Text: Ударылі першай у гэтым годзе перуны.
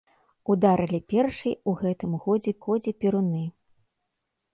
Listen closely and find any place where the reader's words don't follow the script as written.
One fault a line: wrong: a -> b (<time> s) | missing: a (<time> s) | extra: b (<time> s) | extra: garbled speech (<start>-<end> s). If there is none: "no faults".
extra: годзе (2.7 s)